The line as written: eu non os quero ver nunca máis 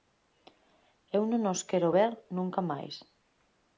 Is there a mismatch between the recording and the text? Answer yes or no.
no